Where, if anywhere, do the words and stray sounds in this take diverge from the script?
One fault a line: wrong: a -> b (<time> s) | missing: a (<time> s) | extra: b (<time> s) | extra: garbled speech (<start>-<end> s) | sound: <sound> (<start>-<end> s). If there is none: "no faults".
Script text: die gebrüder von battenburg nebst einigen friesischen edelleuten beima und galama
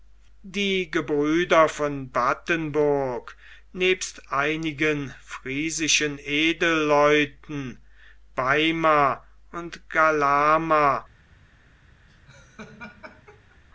sound: laugh (12.1-13.6 s)